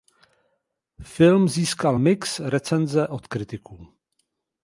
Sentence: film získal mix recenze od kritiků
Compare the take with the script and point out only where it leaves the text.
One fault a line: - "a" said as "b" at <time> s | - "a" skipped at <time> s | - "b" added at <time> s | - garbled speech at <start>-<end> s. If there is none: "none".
none